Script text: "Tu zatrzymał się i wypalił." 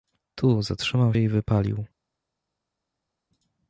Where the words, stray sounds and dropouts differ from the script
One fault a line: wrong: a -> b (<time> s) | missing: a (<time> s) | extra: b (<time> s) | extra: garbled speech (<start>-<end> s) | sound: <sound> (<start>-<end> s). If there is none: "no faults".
missing: się (1.1 s)